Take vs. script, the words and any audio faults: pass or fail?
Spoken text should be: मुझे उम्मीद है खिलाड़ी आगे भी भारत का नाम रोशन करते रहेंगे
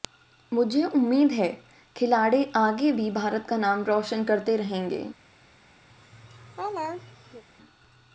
fail